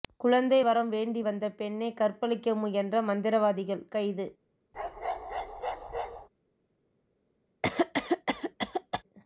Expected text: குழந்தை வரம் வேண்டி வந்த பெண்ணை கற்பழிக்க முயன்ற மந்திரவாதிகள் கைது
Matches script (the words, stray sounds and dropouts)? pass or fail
fail